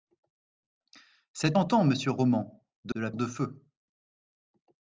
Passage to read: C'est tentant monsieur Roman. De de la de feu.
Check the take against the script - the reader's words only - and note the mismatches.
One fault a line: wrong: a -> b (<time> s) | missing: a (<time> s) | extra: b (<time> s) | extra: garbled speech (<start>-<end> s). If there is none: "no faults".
no faults